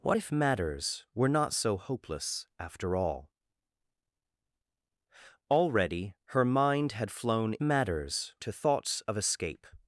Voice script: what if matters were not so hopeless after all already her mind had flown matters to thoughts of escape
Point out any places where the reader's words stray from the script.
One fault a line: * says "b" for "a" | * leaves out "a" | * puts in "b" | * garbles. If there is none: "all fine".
all fine